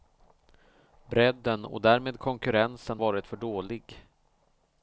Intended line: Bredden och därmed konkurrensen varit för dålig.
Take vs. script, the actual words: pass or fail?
pass